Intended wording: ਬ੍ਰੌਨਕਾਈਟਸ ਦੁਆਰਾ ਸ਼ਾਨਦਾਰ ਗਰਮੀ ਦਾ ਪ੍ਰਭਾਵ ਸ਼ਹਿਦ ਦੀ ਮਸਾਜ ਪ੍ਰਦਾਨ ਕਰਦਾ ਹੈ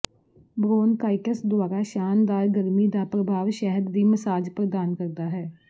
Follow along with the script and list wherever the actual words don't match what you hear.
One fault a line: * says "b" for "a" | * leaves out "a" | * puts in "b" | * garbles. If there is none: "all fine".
all fine